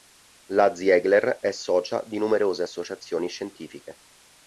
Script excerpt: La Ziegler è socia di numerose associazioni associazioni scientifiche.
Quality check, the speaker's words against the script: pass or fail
fail